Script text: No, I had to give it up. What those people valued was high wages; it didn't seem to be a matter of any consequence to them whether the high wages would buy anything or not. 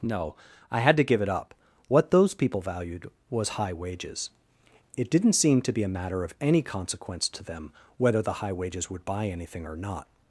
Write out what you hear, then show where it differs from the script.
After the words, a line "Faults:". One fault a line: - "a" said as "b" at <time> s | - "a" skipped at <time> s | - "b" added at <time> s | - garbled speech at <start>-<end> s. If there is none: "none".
No, I had to give it up. What those people valued was high wages; it didn't seem to be a matter of any consequence to them whether the high wages would buy anything or not.
Faults:
none